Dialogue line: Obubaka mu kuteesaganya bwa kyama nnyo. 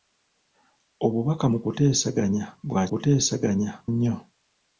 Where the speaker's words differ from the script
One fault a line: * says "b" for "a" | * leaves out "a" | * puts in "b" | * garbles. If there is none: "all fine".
* says "kuteesaganya" for "kyama"